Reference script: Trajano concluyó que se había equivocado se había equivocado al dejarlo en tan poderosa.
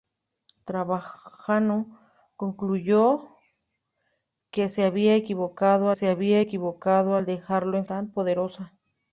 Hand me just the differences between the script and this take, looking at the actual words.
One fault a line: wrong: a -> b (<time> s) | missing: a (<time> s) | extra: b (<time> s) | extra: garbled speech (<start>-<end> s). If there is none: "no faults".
no faults